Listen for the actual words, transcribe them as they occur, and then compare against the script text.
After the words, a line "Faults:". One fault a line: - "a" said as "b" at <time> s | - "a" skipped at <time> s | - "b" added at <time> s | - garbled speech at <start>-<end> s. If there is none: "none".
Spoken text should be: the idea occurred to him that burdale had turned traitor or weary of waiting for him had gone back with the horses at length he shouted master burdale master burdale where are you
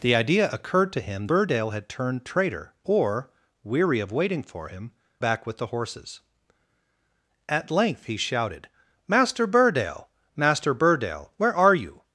the idea occurred to him burdale had turned traitor or weary of waiting for him back with the horses at length he shouted master burdale master burdale where are you
Faults:
- "that" skipped at 1.3 s
- "had gone" skipped at 4.9 s